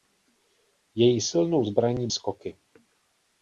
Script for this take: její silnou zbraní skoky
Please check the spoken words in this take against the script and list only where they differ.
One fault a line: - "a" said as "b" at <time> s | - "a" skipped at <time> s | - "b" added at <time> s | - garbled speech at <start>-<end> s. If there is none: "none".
none